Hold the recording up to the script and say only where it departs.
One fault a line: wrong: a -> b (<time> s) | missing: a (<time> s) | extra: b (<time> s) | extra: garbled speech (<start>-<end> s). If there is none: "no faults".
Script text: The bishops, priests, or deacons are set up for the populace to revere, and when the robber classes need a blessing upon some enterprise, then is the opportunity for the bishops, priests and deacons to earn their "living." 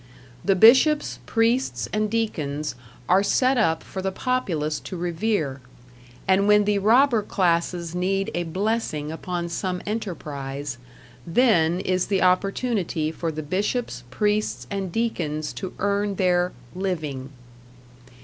wrong: or -> and (1.9 s)